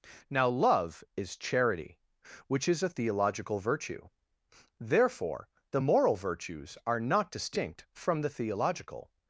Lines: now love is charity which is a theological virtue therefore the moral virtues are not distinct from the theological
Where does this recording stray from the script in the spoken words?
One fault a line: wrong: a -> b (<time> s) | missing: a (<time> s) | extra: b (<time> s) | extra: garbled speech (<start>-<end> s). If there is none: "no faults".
no faults